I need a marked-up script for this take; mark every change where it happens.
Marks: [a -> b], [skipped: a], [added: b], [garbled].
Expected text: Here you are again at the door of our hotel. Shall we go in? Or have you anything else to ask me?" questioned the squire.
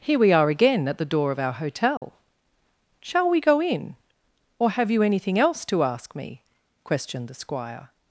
Here [you -> we] are again at the door of our hotel. Shall we go in? Or have you anything else to ask me?" questioned the squire.